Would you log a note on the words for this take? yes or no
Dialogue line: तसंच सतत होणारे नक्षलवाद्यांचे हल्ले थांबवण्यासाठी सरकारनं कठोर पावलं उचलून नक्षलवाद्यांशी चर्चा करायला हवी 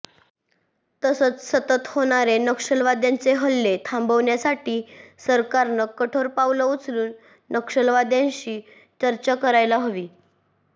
no